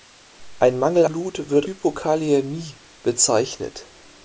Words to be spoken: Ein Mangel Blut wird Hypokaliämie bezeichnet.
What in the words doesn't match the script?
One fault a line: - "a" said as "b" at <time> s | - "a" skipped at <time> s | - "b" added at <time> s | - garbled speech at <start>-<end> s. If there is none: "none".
none